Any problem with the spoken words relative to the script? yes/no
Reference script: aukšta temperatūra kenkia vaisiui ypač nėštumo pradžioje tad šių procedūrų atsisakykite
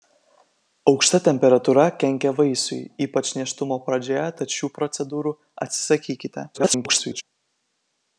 yes